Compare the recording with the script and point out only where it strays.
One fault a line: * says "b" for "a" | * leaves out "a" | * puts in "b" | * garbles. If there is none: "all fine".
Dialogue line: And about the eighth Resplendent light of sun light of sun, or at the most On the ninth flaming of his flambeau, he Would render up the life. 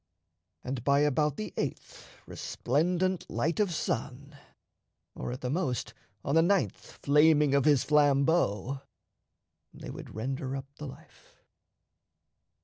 * puts in "by"
* leaves out "light of sun"
* says "they" for "he"